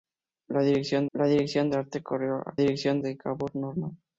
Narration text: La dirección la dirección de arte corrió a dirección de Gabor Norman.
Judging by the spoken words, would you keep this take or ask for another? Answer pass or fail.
pass